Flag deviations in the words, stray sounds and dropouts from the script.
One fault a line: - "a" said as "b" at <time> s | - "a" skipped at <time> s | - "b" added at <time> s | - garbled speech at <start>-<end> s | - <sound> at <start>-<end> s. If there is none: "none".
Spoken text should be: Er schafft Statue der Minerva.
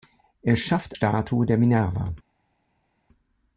none